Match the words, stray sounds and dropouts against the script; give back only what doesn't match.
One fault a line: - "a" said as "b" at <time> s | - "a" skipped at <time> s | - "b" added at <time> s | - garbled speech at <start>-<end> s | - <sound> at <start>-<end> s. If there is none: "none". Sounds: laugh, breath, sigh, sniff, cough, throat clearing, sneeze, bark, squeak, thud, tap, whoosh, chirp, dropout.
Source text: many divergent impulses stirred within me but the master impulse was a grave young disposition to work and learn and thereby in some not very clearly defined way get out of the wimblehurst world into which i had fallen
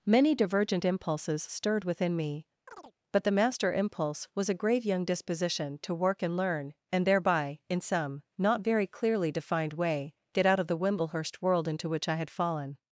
- chirp at 2.7-2.9 s